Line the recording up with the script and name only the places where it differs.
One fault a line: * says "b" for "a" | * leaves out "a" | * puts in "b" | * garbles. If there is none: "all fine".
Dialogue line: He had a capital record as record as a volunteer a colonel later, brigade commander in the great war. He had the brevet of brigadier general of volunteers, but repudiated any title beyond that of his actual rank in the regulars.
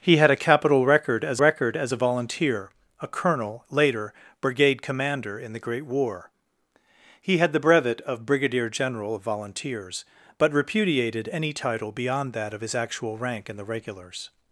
all fine